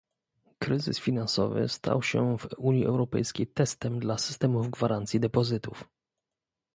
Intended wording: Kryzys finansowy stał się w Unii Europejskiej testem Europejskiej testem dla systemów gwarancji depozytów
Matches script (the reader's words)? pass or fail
fail